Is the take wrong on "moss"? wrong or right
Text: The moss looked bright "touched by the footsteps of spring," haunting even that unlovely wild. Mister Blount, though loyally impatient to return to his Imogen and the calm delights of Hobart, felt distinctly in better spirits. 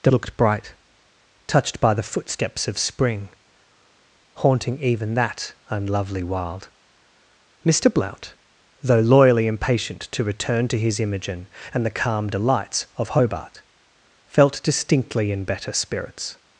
wrong